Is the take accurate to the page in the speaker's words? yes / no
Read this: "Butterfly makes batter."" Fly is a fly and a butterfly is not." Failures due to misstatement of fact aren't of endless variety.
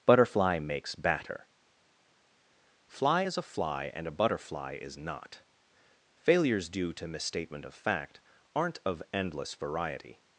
yes